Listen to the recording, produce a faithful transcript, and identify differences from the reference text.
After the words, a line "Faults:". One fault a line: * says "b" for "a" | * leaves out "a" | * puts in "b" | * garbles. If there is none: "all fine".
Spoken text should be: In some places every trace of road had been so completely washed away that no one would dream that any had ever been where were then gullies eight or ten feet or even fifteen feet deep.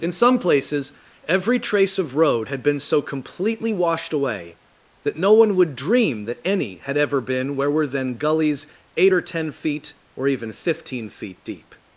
In some places every trace of road had been so completely washed away that no one would dream that any had ever been where were then gullies eight or ten feet or even fifteen feet deep.
Faults:
all fine